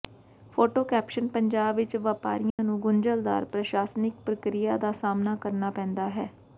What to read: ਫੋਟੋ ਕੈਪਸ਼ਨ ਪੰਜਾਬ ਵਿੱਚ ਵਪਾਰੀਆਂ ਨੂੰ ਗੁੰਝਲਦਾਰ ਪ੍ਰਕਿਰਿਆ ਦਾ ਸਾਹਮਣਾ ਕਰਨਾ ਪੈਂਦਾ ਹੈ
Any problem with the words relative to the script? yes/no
yes